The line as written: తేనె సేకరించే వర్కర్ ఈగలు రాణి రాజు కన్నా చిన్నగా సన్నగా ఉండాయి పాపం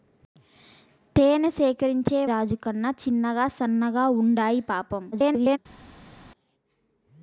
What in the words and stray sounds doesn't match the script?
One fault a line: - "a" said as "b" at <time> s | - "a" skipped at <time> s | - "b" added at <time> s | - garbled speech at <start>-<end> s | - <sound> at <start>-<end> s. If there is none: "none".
- "వర్కర్ ఈగలు రాణి" skipped at 2.2 s
- garbled speech at 5.1-5.6 s